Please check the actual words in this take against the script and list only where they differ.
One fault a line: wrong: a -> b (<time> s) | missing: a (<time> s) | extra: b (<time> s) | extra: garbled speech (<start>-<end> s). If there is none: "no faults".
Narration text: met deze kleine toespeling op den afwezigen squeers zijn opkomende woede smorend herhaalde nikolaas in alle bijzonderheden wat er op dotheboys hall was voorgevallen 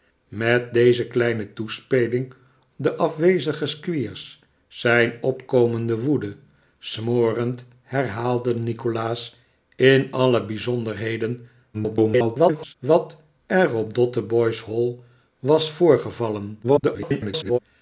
missing: op (2.3 s)
extra: garbled speech (11.7-12.7 s)
extra: garbled speech (16.6-17.6 s)